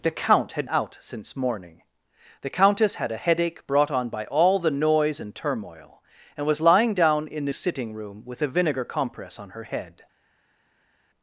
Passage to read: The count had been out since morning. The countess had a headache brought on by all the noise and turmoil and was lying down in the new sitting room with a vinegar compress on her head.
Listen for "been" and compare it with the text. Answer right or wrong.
wrong